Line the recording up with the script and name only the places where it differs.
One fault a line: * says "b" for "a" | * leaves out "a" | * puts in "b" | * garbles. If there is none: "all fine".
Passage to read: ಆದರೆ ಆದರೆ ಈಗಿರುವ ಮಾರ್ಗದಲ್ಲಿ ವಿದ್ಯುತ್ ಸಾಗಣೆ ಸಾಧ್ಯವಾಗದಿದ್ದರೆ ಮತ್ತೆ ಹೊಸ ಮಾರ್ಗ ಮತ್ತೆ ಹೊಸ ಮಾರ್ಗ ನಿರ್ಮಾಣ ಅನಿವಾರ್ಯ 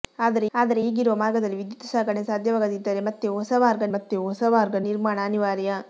all fine